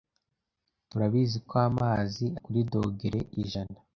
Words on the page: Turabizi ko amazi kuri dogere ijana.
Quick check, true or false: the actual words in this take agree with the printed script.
true